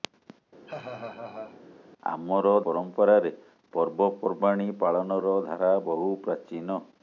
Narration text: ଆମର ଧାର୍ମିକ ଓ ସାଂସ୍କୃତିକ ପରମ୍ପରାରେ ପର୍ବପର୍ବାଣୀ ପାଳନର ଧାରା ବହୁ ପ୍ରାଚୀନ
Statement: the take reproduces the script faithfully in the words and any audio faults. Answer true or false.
false